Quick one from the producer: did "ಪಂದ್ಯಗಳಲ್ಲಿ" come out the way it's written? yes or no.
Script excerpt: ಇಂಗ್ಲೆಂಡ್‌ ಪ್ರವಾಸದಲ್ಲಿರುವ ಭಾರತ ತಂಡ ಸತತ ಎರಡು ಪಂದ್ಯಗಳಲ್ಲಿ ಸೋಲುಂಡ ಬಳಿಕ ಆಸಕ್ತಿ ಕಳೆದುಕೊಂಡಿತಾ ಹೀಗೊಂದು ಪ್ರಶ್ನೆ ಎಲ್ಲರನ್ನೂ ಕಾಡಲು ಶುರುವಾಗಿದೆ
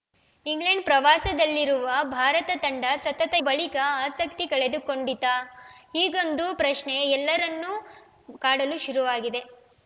no